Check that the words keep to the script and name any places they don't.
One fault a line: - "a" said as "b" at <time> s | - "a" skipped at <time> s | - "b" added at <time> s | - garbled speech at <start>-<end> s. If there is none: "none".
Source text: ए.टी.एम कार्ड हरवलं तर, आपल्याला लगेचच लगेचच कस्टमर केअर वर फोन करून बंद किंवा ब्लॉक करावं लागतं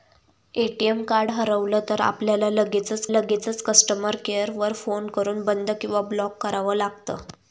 none